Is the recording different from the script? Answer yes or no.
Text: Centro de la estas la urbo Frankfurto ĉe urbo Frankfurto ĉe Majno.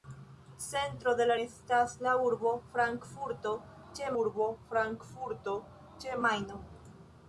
no